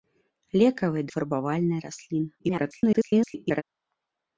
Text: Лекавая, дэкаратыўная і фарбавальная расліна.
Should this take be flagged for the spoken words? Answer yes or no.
yes